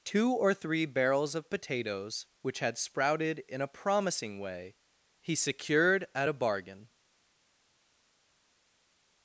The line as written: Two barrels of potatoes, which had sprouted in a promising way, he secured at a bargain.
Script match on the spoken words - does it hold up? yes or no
no